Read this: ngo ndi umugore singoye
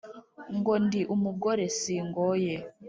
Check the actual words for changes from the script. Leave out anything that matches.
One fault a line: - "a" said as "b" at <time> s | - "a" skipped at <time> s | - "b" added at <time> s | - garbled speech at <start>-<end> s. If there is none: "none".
none